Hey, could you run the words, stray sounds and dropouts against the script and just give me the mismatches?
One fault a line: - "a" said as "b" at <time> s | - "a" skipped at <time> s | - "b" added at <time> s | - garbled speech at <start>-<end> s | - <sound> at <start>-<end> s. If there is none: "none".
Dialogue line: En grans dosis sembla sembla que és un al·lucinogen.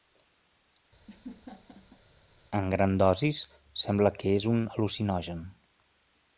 - laugh at 1.1-2.0 s
- "sembla" skipped at 4.1 s